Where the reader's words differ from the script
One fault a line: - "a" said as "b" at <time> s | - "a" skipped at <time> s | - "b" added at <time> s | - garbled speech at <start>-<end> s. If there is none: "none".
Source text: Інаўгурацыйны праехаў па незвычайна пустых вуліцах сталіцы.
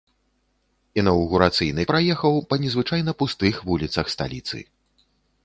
none